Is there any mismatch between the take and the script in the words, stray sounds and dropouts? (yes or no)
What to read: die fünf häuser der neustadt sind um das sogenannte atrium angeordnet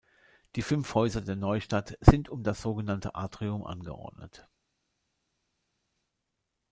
no